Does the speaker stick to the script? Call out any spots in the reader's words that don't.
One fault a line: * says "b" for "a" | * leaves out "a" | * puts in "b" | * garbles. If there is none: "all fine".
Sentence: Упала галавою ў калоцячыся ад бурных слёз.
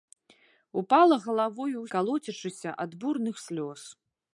all fine